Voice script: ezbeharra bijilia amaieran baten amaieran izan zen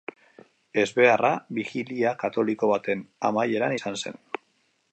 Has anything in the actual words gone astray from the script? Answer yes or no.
yes